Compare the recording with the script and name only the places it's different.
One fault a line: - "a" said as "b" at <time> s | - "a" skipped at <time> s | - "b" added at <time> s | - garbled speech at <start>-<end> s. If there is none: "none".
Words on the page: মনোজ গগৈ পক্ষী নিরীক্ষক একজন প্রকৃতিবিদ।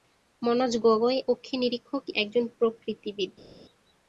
none